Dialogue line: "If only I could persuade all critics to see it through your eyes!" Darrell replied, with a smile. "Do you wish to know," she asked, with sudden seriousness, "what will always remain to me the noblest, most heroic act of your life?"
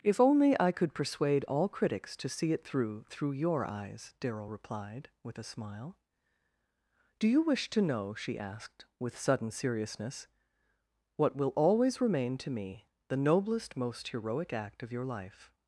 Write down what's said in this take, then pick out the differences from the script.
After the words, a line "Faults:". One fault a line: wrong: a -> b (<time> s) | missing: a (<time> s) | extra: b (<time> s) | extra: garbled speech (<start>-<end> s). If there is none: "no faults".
"If only I could persuade all critics to see it through through your eyes!" Darrell replied, with a smile. "Do you wish to know," she asked, with sudden seriousness, "what will always remain to me the noblest, most heroic act of your life?"
Faults:
extra: through (3.1 s)